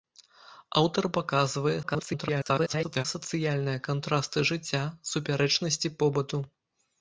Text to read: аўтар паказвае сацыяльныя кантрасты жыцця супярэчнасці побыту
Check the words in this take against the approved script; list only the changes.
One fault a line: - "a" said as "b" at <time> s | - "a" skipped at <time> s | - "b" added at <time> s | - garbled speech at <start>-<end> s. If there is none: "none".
- garbled speech at 1.8-3.0 s